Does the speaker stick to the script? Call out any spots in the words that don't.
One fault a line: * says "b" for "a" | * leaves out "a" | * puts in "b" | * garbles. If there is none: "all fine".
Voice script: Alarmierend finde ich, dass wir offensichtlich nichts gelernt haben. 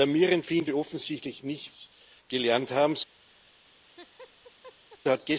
* leaves out "ich dass"